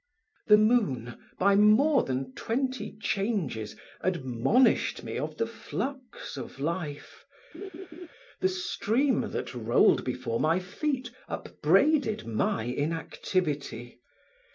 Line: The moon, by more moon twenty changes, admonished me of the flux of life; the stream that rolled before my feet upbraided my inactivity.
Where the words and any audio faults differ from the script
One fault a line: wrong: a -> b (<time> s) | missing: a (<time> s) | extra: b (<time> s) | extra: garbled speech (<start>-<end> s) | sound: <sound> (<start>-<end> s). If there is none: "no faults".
wrong: moon -> than (2.0 s)
sound: laugh (7.5-8.1 s)